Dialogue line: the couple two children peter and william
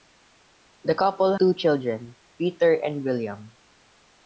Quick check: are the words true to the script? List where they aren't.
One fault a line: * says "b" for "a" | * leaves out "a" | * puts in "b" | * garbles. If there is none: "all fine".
all fine